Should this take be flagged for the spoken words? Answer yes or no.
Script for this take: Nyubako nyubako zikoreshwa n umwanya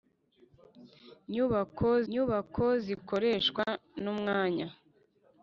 no